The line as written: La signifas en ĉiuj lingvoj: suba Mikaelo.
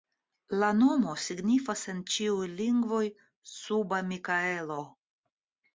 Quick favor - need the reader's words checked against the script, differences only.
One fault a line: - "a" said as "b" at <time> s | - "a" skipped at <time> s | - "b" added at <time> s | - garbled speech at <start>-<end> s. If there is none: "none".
- "nomo" added at 0.8 s